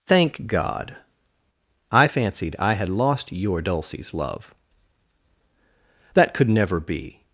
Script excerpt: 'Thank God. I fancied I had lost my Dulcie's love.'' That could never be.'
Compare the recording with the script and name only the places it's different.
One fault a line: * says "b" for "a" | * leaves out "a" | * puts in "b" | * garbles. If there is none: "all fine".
* says "your" for "my"